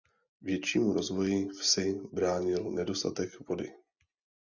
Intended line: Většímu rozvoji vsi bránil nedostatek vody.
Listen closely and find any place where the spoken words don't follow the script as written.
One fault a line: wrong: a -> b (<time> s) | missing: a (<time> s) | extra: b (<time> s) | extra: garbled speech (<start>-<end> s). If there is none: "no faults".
no faults